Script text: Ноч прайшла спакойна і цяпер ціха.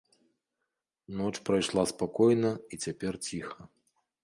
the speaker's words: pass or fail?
pass